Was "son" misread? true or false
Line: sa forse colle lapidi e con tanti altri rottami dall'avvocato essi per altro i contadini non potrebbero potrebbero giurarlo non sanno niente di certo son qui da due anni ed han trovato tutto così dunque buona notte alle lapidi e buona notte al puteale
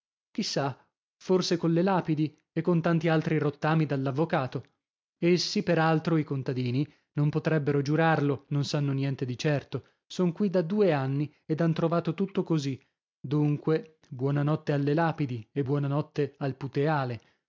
false